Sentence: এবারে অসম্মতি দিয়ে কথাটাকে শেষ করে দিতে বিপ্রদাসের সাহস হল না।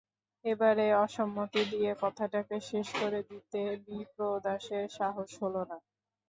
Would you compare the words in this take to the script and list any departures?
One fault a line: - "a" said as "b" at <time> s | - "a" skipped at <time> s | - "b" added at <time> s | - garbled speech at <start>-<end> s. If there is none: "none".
none